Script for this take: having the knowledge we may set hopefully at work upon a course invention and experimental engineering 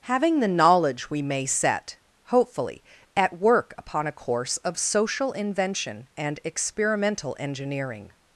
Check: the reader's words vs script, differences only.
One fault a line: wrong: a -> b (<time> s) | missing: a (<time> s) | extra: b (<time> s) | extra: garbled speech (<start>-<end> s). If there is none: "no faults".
extra: of social (4.6 s)